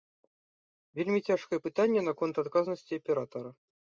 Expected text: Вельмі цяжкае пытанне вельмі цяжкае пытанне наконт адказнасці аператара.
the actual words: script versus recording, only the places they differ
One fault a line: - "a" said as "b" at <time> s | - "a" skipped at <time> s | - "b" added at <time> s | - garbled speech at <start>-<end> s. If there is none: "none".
- "вельмі цяжкае пытанне" skipped at 2.0 s